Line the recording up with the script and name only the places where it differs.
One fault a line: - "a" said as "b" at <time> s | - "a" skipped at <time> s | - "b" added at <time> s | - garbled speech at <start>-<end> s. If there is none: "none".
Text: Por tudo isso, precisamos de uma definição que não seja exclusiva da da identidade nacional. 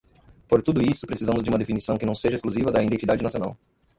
- "da" skipped at 2.8 s